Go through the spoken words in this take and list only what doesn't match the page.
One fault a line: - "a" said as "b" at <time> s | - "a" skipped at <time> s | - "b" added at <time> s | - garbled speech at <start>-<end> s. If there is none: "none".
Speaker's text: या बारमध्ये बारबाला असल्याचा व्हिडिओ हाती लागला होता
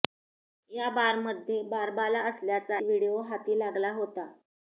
none